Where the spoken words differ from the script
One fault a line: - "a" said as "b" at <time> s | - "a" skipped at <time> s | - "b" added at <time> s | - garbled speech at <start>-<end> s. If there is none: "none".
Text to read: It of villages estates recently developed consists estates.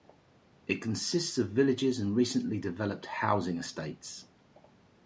- "consists" added at 0.8 s
- "estates" said as "and" at 2.0 s
- "consists" said as "housing" at 3.1 s